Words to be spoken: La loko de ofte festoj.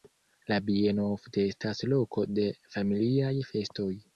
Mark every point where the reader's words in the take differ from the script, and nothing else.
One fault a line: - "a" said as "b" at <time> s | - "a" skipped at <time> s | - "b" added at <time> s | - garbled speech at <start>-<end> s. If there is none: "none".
- "bieno ofte estas" added at 0.7 s
- "ofte" said as "familiaj" at 2.8 s